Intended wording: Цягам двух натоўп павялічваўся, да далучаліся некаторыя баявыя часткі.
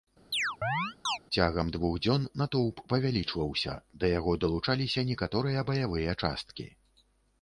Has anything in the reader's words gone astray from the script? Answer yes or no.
yes